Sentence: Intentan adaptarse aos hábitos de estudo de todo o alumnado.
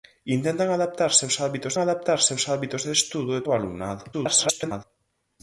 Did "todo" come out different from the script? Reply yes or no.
yes